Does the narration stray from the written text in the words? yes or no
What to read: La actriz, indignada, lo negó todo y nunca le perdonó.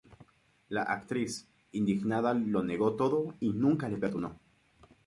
no